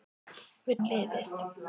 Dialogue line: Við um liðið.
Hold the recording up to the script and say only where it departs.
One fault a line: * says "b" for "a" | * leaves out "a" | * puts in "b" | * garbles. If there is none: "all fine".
all fine